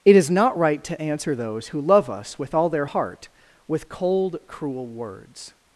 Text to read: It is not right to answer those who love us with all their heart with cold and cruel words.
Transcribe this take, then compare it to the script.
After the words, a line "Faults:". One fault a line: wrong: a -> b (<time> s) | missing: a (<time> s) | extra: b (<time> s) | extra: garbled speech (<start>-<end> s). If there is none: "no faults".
It is not right to answer those who love us with all their heart with cold cruel words.
Faults:
missing: and (4.4 s)